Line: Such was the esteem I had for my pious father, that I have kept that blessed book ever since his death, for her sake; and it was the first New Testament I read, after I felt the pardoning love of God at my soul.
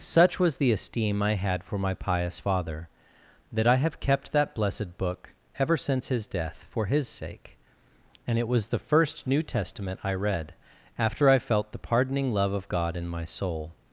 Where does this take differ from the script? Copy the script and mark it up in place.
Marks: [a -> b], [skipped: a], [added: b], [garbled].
Such was the esteem I had for my pious father, that I have kept that blessed book ever since his death, for [her -> his] sake; and it was the first New Testament I read, after I felt the pardoning love of God [at -> in] my soul.